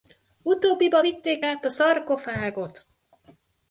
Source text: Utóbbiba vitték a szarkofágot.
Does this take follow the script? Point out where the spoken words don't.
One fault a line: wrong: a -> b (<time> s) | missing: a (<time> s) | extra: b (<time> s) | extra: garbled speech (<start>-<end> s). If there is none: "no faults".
extra: át (1.4 s)